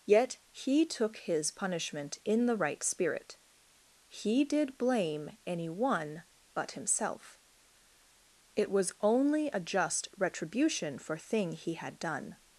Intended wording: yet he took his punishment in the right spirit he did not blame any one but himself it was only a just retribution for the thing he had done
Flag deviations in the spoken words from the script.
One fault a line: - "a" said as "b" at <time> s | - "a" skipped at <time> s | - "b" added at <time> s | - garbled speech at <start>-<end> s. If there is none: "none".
- "not" skipped at 4.8 s
- "the" skipped at 11.2 s